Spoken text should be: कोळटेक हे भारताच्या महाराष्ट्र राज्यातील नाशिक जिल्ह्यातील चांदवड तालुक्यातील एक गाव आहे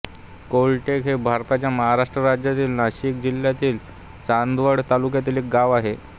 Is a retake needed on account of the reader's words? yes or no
no